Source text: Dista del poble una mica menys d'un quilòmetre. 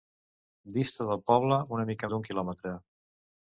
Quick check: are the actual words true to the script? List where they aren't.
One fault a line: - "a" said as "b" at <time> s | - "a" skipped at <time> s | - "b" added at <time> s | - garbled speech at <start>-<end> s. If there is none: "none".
- "menys" skipped at 2.1 s